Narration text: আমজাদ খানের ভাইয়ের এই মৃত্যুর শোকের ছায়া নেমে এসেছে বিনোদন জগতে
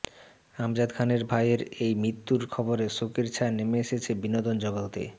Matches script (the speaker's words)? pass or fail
fail